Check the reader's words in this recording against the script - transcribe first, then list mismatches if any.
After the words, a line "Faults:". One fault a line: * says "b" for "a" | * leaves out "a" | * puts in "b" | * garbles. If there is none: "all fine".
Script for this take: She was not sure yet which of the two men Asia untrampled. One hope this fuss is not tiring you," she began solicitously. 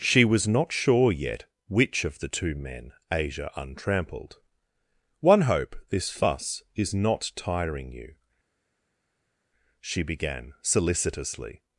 She was not sure yet which of the two men Asia untrampled. One hope this fuss is not tiring you," she began solicitously.
Faults:
all fine